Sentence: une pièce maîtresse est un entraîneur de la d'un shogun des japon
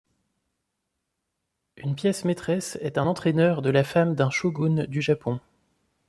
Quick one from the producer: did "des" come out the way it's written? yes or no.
no